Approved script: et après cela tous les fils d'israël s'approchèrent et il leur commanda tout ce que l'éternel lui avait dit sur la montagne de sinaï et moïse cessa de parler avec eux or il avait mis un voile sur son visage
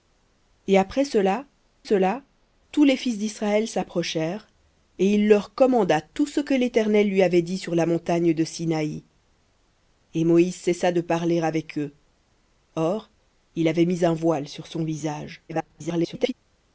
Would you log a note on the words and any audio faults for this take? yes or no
yes